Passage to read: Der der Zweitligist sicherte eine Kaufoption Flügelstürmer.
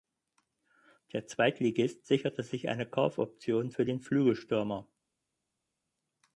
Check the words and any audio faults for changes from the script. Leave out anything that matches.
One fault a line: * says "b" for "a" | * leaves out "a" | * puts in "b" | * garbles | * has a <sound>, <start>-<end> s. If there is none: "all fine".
* leaves out "der"
* puts in "sich"
* puts in "für den"